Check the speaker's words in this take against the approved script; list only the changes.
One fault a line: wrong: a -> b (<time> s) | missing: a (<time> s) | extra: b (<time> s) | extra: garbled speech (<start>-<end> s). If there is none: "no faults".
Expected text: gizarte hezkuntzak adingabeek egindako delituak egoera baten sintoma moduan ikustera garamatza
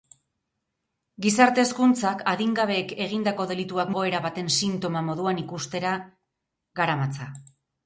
no faults